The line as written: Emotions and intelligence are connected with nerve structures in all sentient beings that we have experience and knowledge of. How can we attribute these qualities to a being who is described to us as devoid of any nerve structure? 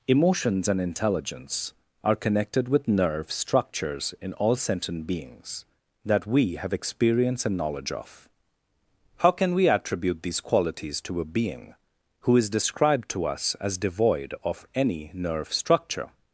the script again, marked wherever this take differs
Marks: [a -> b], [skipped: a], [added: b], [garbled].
Emotions and intelligence are connected with nerve structures in all sentient beings that we have experience and knowledge of. How can we attribute these qualities to a being who is described to us as devoid of any nerve structure?